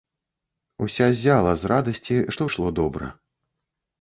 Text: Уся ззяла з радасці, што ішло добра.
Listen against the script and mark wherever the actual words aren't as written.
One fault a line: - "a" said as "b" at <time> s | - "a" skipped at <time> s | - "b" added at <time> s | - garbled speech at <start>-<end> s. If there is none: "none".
none